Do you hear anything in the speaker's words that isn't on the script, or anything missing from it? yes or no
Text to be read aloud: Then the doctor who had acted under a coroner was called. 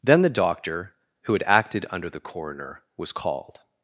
yes